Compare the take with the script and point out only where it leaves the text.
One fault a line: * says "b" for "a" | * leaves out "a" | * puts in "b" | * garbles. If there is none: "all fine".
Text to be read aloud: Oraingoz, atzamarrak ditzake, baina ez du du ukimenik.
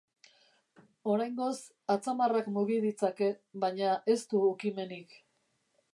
* puts in "mugi"
* leaves out "du"